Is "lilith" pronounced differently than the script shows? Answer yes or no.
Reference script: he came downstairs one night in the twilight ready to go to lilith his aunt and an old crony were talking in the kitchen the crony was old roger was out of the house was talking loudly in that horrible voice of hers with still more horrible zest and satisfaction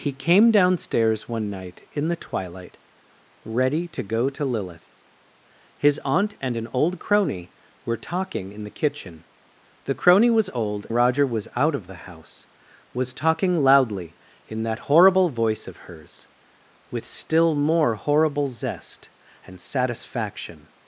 no